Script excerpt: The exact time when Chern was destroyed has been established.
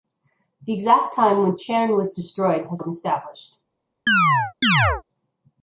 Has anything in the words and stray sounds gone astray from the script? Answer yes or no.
yes